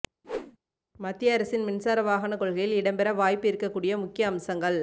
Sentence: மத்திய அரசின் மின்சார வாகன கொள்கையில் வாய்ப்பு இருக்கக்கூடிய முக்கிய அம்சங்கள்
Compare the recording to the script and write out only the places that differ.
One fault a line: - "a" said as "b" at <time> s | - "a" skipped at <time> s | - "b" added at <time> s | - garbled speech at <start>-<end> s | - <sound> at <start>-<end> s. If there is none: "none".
- whoosh at 0.2-0.6 s
- "இடம்பெற" added at 2.7 s